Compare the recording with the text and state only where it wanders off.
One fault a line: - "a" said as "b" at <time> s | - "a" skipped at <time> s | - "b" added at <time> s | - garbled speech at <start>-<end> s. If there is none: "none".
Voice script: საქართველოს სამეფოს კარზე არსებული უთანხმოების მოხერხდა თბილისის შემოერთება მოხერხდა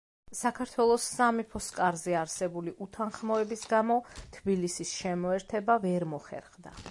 - "მოხერხდა" said as "გამო" at 3.8 s
- "ვერ" added at 5.9 s